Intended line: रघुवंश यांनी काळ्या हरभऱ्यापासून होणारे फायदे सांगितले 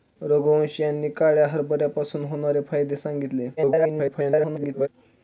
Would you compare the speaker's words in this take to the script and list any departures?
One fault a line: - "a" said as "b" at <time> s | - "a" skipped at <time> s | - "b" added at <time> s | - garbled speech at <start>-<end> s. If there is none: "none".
- garbled speech at 3.6-4.9 s